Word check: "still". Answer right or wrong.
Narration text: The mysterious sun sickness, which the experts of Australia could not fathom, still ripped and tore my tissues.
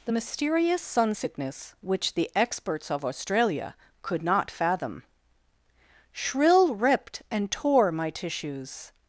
wrong